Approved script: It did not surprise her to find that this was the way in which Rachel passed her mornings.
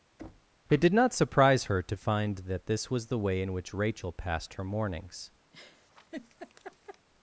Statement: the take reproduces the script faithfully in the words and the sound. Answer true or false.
false